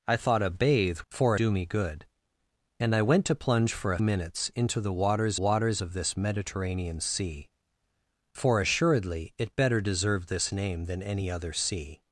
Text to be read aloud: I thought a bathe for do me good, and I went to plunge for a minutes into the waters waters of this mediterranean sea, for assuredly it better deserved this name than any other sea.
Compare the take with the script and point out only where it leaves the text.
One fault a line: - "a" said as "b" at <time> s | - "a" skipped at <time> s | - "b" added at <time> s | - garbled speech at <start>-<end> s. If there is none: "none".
none